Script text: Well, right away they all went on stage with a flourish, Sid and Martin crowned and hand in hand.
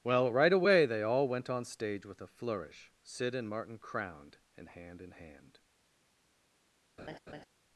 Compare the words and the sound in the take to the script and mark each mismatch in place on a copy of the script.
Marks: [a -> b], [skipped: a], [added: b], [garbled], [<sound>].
Well, right away they all went on stage with a flourish, Sid and Martin crowned and hand in hand. [laugh]